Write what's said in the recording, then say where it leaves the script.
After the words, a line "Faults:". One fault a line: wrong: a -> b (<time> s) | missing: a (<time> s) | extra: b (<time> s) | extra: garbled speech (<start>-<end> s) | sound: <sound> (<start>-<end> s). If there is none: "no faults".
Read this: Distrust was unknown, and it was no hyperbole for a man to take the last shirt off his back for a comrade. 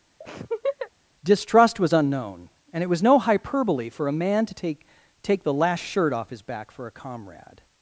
Distrust was unknown, and it was no hyperbole for a man to take take the last shirt off his back for a comrade.
Faults:
sound: laugh (0.2-0.9 s)
extra: take (5.2 s)